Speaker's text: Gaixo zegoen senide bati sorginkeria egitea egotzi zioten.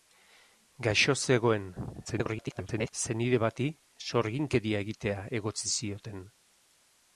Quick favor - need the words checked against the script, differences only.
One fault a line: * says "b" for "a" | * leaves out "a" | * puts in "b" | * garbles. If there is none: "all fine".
* garbles